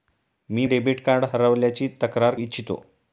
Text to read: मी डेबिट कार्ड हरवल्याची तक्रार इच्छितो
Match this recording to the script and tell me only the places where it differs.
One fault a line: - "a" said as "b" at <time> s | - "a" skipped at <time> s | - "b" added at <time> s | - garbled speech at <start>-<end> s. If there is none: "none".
none